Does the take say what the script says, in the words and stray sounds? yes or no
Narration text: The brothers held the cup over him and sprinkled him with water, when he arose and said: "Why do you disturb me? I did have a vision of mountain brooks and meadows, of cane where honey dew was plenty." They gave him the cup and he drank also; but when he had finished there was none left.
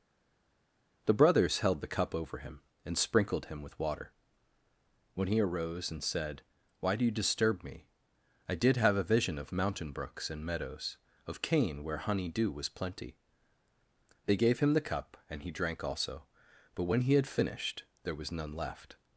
yes